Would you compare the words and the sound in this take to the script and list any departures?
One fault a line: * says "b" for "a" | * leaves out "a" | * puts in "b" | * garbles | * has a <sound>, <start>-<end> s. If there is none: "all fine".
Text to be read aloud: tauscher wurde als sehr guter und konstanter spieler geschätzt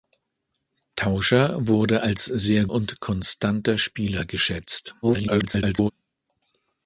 * leaves out "guter"
* garbles